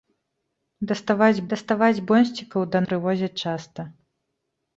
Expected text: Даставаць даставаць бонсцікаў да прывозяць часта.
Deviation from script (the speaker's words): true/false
false